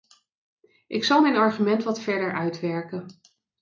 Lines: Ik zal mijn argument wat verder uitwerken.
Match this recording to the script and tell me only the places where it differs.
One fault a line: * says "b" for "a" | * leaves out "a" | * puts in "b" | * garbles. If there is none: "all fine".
all fine